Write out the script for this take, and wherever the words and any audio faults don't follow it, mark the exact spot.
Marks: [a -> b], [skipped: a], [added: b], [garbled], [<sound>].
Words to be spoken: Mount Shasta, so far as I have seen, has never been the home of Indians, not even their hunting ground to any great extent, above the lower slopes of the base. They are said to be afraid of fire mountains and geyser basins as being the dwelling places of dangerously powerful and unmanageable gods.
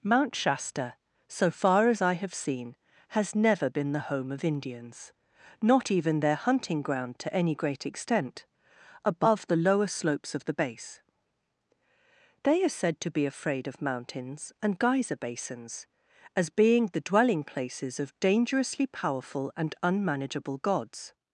Mount Shasta, so far as I have seen, has never been the home of Indians, not even their hunting ground to any great extent, above the lower slopes of the base. They are said to be afraid of [skipped: fire] mountains and geyser basins as being the dwelling places of dangerously powerful and unmanageable gods.